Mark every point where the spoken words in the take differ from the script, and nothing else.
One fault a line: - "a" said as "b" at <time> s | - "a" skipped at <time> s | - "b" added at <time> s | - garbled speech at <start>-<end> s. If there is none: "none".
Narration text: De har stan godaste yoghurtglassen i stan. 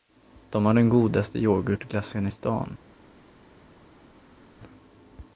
- "stan" said as "den" at 0.7 s